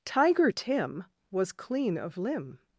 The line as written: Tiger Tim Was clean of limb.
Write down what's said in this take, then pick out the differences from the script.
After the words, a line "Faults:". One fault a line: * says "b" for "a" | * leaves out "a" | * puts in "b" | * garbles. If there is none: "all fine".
Tiger Tim Was clean of limb.
Faults:
all fine